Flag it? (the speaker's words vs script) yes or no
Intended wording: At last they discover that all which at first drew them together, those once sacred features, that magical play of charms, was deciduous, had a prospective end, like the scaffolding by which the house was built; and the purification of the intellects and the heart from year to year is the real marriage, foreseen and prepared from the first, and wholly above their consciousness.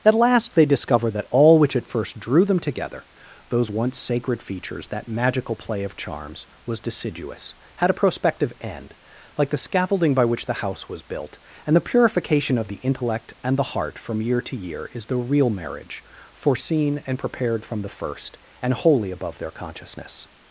yes